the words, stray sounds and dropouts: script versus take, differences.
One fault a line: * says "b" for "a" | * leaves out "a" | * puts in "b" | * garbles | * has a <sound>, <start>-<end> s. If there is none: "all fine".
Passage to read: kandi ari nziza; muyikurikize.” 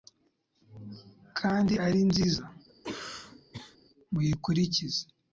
* has a cough, 2.7-3.8 s